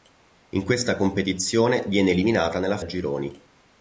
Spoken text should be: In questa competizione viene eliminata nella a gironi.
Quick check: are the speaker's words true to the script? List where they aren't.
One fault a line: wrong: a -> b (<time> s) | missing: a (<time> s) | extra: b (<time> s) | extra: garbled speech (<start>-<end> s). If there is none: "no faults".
no faults